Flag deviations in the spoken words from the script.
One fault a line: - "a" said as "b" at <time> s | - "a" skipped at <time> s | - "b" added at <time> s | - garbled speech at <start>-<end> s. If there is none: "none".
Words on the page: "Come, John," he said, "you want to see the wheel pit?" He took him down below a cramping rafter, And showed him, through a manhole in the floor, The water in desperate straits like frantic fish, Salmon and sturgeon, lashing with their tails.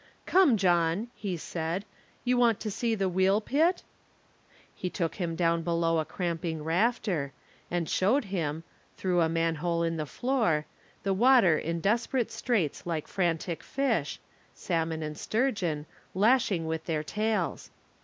none